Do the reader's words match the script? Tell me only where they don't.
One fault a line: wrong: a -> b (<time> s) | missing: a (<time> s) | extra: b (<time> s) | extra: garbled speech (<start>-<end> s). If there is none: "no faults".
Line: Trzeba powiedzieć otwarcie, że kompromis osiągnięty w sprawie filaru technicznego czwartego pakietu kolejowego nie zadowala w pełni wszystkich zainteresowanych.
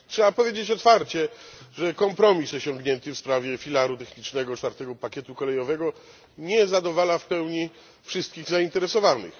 no faults